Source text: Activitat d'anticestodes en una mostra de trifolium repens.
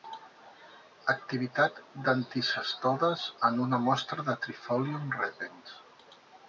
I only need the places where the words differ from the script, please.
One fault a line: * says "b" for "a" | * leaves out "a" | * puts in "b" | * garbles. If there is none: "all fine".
all fine